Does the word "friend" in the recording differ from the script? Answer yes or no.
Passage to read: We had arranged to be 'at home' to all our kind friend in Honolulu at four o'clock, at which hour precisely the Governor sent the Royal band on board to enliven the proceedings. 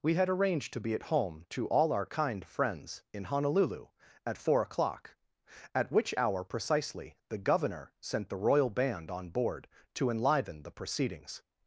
yes